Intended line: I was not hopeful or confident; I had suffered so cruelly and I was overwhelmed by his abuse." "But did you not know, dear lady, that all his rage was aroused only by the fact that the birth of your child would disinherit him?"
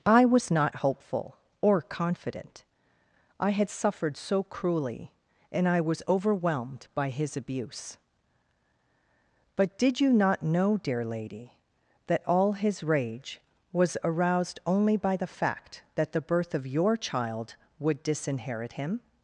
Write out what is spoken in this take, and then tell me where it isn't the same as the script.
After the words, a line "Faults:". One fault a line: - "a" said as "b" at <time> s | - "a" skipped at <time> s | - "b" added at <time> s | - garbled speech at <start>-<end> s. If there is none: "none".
I was not hopeful or confident; I had suffered so cruelly and I was overwhelmed by his abuse." "But did you not know, dear lady, that all his rage was aroused only by the fact that the birth of your child would disinherit him?"
Faults:
none